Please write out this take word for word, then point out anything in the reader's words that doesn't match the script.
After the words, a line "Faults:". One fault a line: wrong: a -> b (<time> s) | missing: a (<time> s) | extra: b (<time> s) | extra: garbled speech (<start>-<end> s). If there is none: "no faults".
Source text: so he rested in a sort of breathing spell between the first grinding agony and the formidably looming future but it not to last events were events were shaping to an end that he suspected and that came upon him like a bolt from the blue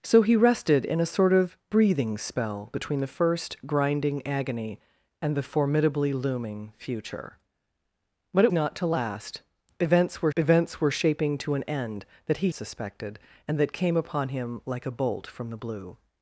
so he rested in a sort of breathing spell between the first grinding agony and the formidably looming future but it not to last events were events were shaping to an end that he suspected and that came upon him like a bolt from the blue
Faults:
no faults